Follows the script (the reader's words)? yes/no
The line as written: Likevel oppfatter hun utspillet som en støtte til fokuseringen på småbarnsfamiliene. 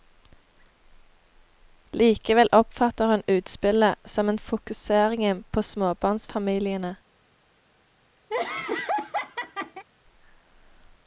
no